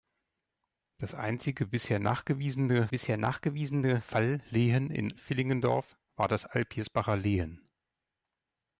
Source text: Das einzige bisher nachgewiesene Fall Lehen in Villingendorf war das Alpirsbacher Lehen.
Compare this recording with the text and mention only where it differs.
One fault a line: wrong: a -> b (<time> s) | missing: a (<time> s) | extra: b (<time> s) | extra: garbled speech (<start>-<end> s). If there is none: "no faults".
extra: bisher nachgewiesene (2.9 s)